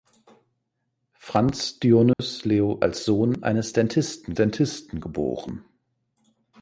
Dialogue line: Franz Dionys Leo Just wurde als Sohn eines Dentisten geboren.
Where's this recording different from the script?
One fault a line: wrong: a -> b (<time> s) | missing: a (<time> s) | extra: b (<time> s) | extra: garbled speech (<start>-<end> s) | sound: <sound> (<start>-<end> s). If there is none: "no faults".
sound: dropout (2.1-2.2 s)
missing: Just wurde (2.8 s)
extra: Dentisten (4.3 s)